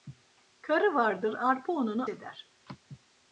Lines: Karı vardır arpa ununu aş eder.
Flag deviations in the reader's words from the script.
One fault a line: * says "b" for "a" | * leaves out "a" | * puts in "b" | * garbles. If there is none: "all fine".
* leaves out "aş"